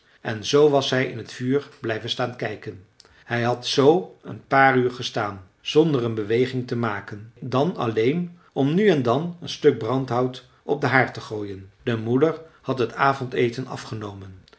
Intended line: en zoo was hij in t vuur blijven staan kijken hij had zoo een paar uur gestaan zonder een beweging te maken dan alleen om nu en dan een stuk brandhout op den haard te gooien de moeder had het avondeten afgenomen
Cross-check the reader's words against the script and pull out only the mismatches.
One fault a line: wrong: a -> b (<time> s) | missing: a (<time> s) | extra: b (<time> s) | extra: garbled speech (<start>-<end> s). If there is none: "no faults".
no faults